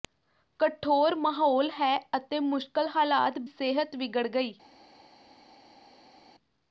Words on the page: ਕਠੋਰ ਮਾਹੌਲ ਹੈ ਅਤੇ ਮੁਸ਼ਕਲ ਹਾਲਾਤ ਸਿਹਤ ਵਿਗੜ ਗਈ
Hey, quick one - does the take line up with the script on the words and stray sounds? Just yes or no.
yes